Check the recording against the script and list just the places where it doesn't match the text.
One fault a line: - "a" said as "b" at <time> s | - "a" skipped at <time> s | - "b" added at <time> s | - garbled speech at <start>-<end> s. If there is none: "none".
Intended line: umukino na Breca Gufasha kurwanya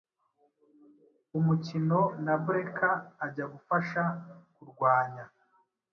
- "Ajya" added at 3.2 s